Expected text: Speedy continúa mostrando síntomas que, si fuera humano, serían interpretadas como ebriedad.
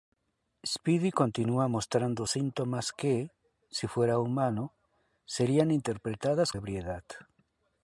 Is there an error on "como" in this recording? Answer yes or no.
yes